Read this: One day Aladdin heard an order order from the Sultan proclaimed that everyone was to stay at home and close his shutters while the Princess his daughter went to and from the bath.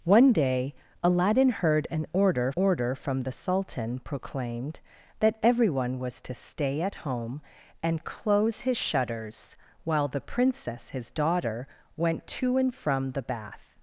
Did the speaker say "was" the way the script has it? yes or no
yes